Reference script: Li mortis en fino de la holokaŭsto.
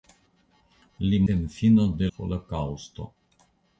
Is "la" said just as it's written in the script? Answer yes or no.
no